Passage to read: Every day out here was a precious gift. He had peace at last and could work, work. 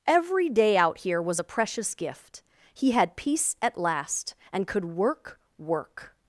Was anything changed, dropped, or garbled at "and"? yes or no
no